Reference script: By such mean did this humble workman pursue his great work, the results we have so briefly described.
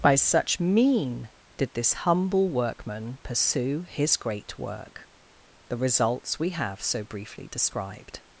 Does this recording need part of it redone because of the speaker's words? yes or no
no